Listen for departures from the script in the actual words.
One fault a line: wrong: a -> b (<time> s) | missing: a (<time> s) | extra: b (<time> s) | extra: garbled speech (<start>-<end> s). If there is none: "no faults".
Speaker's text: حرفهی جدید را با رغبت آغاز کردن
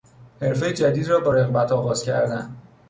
no faults